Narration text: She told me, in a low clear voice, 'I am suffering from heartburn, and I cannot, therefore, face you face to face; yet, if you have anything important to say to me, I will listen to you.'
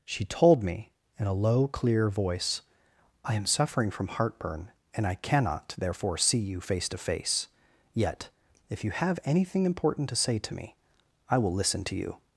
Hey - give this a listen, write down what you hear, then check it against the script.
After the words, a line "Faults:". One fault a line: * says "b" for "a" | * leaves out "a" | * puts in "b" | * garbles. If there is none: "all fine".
She told me, in a low clear voice, 'I am suffering from heartburn, and I cannot, therefore, see you face to face; yet, if you have anything important to say to me, I will listen to you.'
Faults:
* says "see" for "face"